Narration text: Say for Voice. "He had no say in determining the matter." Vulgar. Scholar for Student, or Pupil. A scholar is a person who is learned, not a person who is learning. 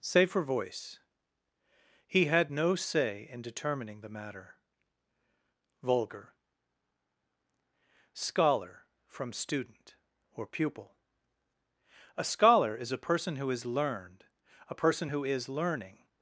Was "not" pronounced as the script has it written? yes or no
no